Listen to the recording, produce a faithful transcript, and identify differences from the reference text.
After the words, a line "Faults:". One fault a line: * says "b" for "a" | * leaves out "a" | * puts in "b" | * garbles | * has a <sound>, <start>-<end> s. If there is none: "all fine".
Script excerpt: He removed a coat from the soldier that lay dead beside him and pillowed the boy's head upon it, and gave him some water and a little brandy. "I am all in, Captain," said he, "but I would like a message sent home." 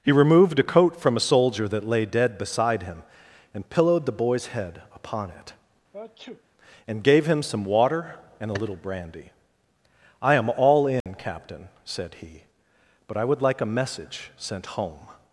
He removed a coat from a soldier that lay dead beside him and pillowed the boy's head upon it, and gave him some water and a little brandy. "I am all in, Captain," said he, "but I would like a message sent home."
Faults:
* says "a" for "the"
* has a sneeze, 5.9-6.4 s
* has a dropout, 11.0-11.1 s